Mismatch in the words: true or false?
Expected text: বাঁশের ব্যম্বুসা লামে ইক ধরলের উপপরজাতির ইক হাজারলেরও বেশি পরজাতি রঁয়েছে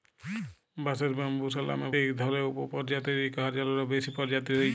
false